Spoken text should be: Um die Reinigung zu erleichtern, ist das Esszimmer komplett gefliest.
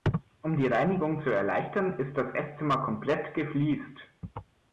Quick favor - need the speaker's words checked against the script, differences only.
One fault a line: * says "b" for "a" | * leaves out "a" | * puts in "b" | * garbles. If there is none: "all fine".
all fine